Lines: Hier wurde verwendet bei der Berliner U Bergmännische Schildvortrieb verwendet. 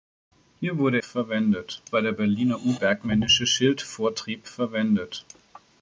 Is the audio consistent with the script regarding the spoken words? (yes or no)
yes